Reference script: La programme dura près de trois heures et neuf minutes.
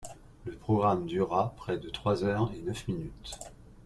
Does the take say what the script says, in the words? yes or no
no